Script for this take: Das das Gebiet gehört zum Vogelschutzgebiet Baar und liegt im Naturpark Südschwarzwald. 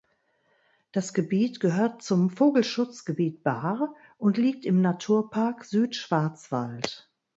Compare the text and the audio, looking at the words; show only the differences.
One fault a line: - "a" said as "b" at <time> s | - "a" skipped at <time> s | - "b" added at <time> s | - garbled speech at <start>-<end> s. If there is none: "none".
- "das" skipped at 1.1 s